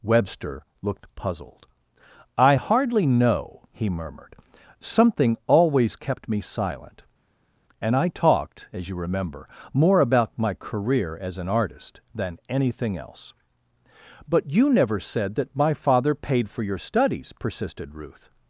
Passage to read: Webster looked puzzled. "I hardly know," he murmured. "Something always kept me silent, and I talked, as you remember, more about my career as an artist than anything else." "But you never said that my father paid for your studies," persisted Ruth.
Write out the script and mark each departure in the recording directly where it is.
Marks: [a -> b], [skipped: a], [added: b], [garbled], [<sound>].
Webster looked puzzled. "I hardly know," he murmured. "Something always kept me silent, and I talked, as you remember, more about my career as an artist than anything else." "But you never said that my father paid for your studies," persisted Ruth.